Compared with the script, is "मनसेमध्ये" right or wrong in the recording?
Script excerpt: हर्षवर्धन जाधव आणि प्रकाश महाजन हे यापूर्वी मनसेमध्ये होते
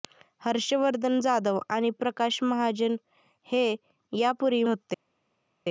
wrong